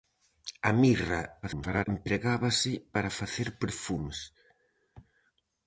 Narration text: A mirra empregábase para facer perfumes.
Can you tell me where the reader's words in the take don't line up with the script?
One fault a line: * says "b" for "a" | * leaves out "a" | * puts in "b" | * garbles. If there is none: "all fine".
* garbles